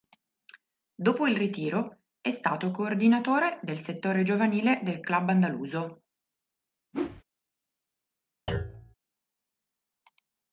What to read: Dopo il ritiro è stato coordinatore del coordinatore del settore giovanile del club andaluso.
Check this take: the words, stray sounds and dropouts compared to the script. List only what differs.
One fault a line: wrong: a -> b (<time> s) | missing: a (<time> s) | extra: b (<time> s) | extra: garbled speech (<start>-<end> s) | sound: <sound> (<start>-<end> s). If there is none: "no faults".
missing: coordinatore del (3.8 s)
sound: whoosh (6.9-7.2 s)
sound: thud (8.5-8.9 s)